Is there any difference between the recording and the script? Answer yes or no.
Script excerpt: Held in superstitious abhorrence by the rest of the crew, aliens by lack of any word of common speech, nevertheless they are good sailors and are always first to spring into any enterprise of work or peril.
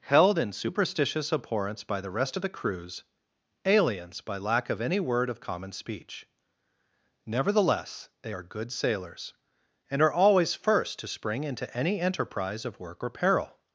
yes